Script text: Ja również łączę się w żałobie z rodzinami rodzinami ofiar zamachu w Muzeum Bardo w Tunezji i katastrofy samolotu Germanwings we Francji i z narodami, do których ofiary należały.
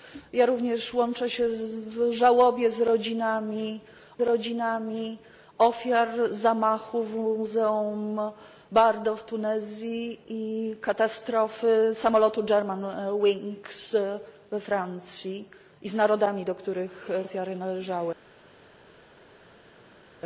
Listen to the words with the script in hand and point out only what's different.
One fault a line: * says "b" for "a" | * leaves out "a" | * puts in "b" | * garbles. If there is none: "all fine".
all fine